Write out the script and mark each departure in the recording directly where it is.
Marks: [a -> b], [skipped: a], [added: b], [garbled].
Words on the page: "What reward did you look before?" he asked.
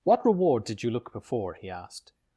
"What reward did you look before?" he asked.